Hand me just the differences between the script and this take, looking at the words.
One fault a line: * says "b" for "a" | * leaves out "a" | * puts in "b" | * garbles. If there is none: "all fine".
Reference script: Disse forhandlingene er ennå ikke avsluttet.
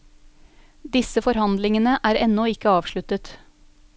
all fine